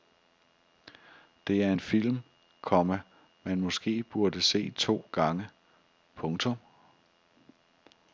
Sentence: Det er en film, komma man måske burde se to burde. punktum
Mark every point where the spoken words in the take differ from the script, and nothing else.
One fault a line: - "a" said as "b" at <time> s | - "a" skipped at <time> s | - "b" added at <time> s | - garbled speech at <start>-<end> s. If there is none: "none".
- "burde" said as "gange" at 5.1 s